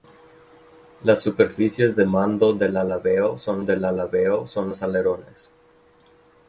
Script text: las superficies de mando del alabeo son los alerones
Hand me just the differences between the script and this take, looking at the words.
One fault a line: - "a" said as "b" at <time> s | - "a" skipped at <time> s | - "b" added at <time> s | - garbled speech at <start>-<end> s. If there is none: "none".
- "del alabeo son" added at 3.6 s